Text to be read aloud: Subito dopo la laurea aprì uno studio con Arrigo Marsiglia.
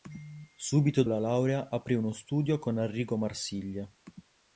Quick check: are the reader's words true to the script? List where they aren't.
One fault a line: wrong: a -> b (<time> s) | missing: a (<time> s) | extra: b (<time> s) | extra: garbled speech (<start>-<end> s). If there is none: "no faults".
missing: dopo (1.0 s)